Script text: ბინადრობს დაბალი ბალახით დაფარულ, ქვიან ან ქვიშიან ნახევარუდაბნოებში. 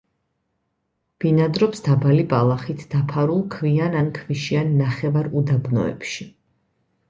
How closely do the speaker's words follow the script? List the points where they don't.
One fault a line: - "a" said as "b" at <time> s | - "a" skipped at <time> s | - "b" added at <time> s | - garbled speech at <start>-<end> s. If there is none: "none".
none